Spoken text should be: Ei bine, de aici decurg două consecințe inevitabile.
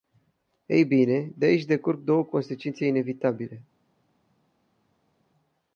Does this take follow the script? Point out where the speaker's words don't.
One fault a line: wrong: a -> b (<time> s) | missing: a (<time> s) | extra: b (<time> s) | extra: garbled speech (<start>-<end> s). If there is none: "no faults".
no faults